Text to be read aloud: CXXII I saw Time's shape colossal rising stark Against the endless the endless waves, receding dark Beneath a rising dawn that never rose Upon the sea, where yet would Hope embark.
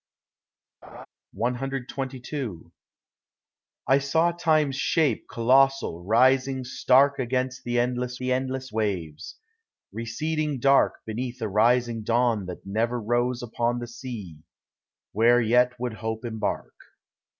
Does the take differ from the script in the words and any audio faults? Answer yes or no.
yes